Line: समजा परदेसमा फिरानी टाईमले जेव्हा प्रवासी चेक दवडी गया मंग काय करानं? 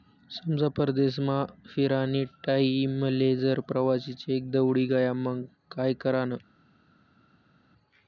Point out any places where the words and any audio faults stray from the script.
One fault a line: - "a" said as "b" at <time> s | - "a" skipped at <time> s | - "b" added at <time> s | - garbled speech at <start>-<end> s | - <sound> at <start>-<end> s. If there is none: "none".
- "जेव्हा" said as "जर" at 3.4 s